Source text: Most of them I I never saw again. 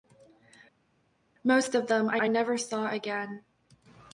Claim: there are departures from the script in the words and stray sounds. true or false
false